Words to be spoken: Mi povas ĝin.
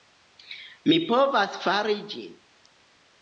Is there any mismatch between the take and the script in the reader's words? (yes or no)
yes